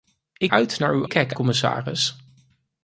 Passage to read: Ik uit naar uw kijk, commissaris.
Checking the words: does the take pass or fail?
pass